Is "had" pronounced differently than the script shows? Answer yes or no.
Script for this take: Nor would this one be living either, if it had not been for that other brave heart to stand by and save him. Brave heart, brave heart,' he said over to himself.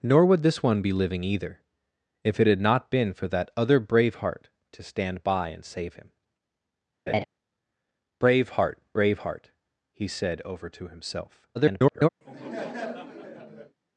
no